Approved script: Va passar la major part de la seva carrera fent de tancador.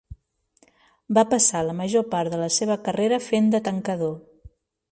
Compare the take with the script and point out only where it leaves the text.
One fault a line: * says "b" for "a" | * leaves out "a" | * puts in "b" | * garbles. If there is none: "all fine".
all fine